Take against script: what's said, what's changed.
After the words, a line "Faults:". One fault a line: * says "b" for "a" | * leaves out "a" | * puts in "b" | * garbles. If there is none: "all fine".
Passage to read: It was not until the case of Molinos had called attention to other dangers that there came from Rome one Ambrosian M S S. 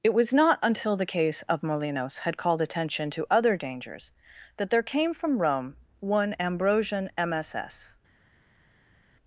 It was not until the case of Molinos had called attention to other dangers that there came from Rome one Ambrosian M S S.
Faults:
all fine